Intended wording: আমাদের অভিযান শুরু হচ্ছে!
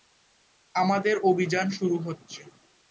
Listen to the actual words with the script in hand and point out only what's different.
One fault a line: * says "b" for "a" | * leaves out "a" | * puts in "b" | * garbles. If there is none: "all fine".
all fine